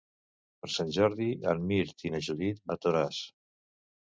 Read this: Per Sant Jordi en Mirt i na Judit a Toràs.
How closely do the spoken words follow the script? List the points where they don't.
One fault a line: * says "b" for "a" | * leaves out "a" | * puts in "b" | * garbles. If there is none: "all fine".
all fine